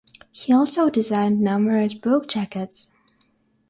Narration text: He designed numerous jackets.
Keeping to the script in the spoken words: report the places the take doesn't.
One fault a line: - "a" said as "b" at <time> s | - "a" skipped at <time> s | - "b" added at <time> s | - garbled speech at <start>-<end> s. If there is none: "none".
- "also" added at 0.5 s
- "book" added at 1.9 s